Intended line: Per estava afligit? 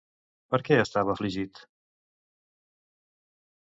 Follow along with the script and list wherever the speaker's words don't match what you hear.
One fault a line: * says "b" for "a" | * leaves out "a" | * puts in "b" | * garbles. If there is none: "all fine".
* puts in "què"